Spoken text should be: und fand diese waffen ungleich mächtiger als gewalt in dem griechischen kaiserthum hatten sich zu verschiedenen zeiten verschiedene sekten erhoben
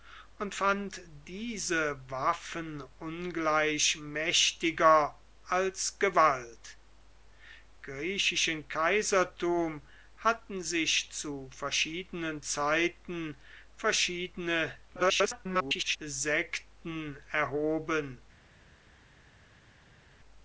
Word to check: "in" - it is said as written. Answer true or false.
false